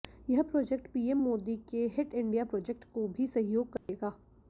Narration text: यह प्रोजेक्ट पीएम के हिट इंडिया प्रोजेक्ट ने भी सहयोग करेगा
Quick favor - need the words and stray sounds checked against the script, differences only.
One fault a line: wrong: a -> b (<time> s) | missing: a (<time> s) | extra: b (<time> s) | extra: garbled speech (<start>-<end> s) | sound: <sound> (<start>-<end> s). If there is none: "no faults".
extra: मोदी (1.2 s)
wrong: ने -> को (2.9 s)
sound: dropout (3.8-3.9 s)